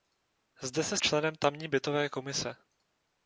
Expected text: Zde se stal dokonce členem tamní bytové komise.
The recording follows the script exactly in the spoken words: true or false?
false